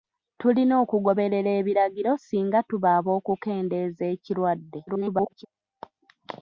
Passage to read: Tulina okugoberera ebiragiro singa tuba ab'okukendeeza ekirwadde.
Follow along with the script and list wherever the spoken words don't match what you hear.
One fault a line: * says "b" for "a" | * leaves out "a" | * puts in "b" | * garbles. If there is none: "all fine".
* garbles